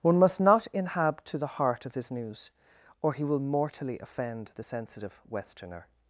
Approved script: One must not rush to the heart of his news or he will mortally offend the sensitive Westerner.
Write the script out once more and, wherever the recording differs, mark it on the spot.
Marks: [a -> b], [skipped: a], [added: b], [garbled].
One must not [rush -> inhab] to the heart of his news or he will mortally offend the sensitive Westerner.